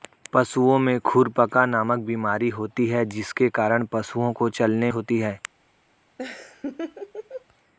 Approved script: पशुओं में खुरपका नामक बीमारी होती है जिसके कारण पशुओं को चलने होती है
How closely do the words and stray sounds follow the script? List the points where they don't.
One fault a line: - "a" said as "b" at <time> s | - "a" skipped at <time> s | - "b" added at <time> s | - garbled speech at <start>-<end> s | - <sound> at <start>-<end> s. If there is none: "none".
- laugh at 6.2-7.5 s